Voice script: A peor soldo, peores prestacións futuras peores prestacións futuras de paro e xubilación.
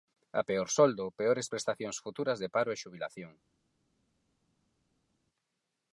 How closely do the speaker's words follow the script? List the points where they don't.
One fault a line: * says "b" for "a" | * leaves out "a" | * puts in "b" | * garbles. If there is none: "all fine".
* leaves out "peores prestacións futuras"